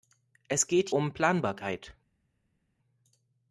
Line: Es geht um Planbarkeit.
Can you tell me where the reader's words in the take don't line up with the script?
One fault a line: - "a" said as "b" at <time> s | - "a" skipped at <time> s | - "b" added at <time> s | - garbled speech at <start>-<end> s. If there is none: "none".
none